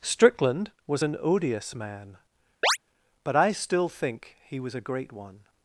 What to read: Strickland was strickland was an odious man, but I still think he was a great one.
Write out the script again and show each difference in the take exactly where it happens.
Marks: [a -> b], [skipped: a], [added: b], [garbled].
Strickland was [skipped: strickland was] an odious man, but I still think he was a great one.